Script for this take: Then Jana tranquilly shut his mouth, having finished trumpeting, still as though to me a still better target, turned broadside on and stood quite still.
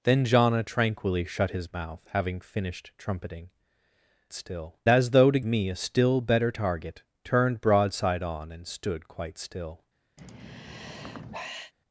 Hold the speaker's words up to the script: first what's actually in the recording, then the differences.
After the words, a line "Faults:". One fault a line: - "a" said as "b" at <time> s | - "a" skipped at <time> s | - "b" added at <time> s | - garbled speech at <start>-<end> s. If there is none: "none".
Then Jana tranquilly shut his mouth, having finished trumpeting, still as though to me a still better target, turned broadside on and stood quite still.
Faults:
none